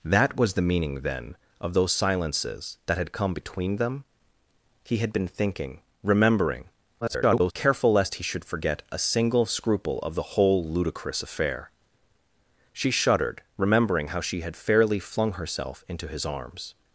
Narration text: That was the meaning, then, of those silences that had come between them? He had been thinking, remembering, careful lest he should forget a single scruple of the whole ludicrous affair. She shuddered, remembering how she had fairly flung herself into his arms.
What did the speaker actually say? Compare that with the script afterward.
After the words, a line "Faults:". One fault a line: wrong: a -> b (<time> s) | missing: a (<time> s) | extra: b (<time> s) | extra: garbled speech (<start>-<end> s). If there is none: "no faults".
That was the meaning, then, of those silences that had come between them? He had been thinking, remembering, [garbled] careful lest he should forget a single scruple of the whole ludicrous affair. She shuddered, remembering how she had fairly flung herself into his arms.
Faults:
extra: garbled speech (7.0-7.5 s)